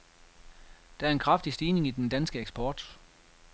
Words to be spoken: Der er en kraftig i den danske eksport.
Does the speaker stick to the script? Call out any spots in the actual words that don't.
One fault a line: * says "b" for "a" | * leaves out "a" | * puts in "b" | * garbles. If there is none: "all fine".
* puts in "stigning"